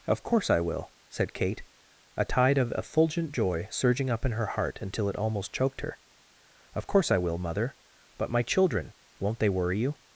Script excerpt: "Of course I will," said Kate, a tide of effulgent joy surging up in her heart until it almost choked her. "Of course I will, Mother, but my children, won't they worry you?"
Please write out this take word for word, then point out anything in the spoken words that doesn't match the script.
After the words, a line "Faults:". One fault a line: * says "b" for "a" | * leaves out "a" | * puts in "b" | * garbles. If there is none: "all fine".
"Of course I will," said Kate, a tide of effulgent joy surging up in her heart until it almost choked her. "Of course I will, Mother, but my children, won't they worry you?"
Faults:
all fine